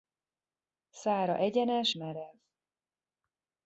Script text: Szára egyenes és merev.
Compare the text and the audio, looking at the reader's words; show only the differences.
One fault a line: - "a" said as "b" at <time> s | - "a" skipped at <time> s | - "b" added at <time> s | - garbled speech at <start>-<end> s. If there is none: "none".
- "és" skipped at 1.9 s